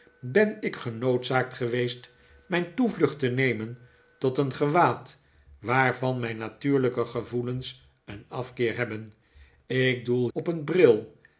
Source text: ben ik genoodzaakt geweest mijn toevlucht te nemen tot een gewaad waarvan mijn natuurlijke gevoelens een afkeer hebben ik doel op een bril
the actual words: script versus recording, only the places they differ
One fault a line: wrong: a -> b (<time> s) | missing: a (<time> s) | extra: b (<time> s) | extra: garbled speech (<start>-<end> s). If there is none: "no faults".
no faults